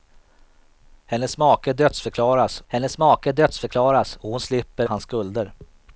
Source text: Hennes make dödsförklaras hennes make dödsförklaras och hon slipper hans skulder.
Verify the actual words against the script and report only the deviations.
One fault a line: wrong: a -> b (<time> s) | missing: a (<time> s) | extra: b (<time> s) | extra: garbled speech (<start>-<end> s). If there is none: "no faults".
no faults